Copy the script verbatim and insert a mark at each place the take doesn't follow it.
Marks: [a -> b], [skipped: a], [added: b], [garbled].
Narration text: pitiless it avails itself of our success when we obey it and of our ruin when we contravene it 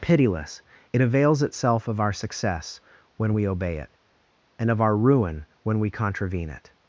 pitiless it avails itself of our success when we obey it and of our ruin when we contravene it